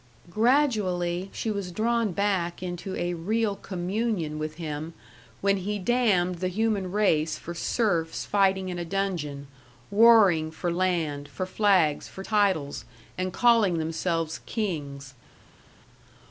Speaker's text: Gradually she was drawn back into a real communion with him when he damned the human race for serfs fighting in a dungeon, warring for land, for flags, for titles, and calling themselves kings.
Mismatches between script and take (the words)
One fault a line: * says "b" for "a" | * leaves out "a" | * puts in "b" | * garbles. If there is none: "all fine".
all fine